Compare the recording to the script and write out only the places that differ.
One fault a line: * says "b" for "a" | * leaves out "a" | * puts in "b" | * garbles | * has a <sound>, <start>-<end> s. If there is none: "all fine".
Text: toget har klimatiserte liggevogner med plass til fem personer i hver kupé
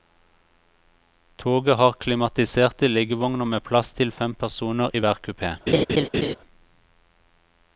* has a laugh, 5.7-6.4 s